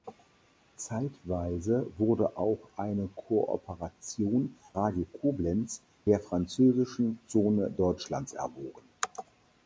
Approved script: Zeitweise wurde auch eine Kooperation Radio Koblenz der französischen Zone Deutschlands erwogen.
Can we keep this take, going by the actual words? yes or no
yes